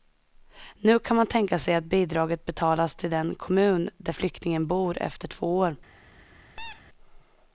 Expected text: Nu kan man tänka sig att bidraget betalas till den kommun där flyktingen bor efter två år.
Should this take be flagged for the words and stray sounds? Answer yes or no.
yes